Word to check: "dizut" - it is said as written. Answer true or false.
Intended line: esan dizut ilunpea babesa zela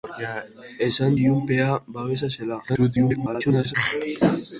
false